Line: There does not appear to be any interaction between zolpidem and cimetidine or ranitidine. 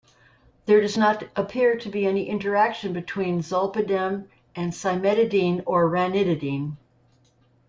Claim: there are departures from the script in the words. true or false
false